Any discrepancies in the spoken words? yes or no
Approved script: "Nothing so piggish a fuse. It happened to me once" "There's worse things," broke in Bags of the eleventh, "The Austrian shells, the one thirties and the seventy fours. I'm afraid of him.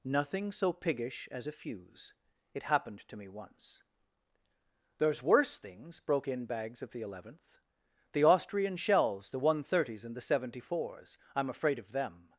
yes